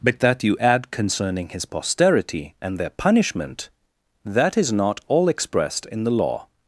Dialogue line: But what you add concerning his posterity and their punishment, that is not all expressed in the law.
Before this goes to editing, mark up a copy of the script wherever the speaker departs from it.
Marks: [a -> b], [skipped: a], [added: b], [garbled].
But [what -> that] you add concerning his posterity and their punishment, that is not all expressed in the law.